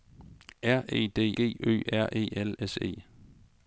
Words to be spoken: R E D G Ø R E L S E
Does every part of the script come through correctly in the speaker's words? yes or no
yes